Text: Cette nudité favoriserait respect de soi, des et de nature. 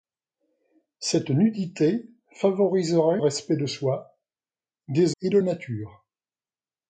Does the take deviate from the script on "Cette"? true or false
false